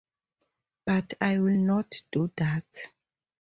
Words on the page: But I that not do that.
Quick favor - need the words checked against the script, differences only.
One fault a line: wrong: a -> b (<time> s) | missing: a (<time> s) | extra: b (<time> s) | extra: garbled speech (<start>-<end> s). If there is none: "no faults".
wrong: that -> will (1.4 s)